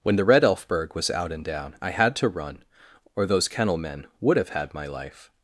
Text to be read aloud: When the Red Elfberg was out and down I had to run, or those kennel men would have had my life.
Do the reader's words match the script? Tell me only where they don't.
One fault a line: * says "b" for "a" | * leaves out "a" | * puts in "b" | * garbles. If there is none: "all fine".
all fine